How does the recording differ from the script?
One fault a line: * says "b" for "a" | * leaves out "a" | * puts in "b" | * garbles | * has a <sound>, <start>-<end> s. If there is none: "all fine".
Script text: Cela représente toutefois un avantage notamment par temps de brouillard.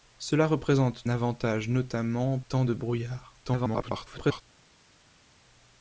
* leaves out "toutefois un"
* leaves out "par"
* garbles